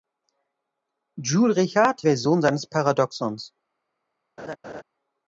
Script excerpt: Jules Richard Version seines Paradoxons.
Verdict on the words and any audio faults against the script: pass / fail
fail